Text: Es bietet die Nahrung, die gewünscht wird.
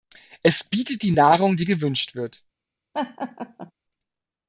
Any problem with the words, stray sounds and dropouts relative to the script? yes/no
yes